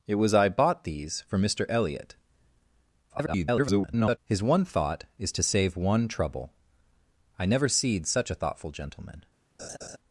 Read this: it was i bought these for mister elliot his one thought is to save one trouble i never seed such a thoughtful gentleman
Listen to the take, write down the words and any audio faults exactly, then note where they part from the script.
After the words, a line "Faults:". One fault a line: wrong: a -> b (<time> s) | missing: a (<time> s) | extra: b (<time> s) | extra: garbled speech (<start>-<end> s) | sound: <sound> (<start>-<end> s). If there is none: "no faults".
it was i bought these for mister elliot [garbled] his one thought is to save one trouble i never seed such a thoughtful gentleman
Faults:
extra: garbled speech (3.1-4.2 s)
sound: laugh (9.6-10.0 s)